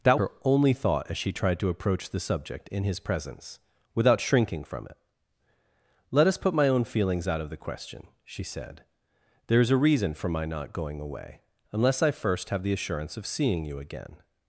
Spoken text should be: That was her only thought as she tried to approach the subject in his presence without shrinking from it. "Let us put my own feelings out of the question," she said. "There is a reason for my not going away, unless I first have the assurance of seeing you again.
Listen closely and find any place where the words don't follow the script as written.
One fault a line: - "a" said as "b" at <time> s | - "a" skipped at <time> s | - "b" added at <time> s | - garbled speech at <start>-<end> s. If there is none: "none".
- "was" skipped at 0.2 s